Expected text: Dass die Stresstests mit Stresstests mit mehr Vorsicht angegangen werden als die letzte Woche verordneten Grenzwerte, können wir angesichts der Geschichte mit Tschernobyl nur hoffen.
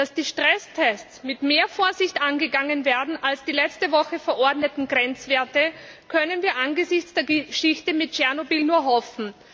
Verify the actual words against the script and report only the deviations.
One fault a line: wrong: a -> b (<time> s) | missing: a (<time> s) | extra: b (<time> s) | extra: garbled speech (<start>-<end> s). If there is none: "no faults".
missing: Stresstests mit (1.4 s)